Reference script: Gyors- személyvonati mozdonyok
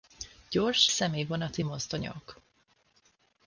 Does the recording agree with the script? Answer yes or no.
yes